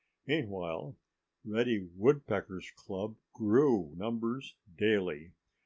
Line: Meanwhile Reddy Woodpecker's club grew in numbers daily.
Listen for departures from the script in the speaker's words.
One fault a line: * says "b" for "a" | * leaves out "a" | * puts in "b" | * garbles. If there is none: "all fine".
* leaves out "in"